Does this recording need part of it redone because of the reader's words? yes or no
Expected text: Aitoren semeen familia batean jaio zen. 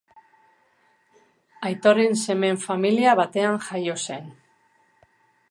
no